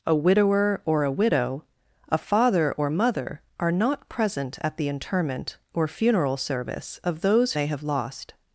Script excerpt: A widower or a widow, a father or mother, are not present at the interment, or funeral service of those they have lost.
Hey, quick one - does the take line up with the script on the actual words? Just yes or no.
yes